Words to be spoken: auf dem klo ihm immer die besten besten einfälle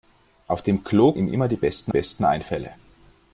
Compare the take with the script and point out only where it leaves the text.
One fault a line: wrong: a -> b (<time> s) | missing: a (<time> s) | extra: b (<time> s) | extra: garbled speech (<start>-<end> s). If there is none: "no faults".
no faults